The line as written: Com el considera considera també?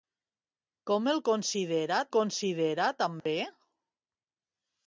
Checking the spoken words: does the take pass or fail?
pass